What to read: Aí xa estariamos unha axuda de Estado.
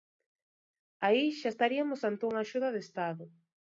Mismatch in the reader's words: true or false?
true